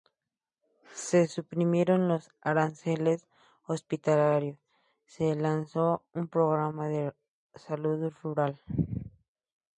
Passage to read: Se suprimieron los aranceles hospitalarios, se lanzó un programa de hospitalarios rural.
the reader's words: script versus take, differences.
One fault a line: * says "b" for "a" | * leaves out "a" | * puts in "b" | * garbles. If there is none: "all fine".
* says "salud" for "hospitalarios"